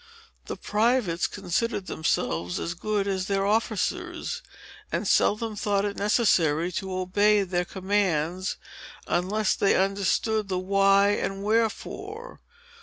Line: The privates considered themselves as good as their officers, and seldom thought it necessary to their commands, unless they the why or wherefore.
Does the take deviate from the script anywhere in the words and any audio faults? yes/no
yes